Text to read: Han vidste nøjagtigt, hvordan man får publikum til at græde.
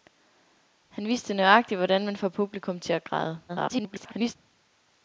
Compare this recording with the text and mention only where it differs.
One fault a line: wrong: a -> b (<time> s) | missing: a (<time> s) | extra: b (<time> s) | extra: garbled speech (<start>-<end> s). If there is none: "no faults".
extra: garbled speech (3.5-4.4 s)